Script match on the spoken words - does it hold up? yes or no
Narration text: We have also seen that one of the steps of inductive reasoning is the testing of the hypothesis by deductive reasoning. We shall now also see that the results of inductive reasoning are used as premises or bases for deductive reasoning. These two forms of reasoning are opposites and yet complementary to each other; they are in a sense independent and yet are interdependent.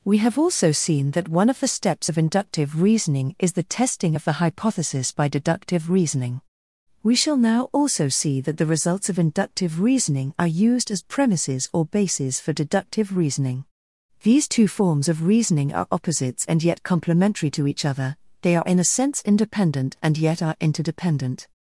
yes